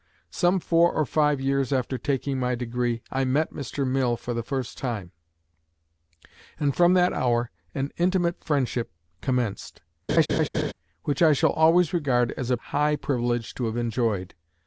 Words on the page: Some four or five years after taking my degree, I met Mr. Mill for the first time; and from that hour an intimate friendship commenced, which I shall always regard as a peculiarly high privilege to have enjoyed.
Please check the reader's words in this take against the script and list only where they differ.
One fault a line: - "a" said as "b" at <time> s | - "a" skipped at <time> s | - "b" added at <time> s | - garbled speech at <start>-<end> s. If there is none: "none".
- "peculiarly" skipped at 12.6 s